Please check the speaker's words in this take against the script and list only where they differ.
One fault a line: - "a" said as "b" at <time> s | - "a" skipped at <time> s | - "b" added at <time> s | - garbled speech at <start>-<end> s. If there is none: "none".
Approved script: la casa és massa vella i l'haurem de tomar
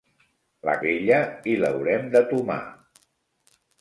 - "casa és massa" skipped at 0.7 s